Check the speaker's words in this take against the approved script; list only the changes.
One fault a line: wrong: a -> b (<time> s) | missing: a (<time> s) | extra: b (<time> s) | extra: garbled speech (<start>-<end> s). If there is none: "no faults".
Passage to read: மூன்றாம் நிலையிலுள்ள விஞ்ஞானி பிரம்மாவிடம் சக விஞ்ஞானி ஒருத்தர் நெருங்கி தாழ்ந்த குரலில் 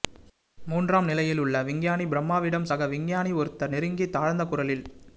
no faults